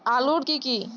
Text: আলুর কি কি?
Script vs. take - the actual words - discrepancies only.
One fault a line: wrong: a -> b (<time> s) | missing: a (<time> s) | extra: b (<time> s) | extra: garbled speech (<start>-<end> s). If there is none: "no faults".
no faults